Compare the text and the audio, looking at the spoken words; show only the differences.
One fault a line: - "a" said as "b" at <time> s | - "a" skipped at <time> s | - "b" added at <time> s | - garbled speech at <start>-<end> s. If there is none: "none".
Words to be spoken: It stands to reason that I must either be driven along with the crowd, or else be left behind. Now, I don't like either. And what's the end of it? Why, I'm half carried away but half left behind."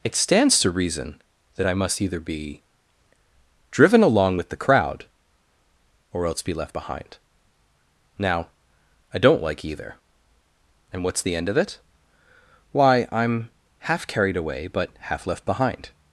none